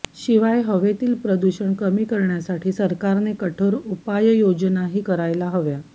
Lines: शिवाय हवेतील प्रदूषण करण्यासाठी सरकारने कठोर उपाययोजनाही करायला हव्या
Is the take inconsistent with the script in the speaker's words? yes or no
yes